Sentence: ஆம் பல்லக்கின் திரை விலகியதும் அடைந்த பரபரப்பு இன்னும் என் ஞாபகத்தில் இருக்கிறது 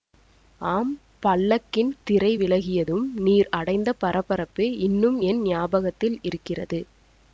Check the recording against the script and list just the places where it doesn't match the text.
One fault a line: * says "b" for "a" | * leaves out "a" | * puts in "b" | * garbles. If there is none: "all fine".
* puts in "நீர்"